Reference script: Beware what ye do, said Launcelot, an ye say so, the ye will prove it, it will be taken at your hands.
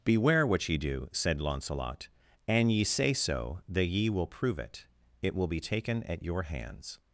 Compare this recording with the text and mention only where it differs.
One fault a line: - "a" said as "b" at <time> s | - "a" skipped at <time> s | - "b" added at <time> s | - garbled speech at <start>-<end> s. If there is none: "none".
none